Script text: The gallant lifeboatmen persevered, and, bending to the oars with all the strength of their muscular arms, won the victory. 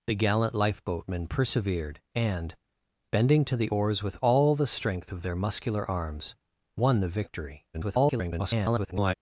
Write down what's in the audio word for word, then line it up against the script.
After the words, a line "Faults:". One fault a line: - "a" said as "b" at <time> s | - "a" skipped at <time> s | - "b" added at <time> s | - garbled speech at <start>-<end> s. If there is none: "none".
The gallant lifeboatmen persevered, and, bending to the oars with all the strength of their muscular arms, won the victory. [garbled]
Faults:
- garbled speech at 7.7-9.1 s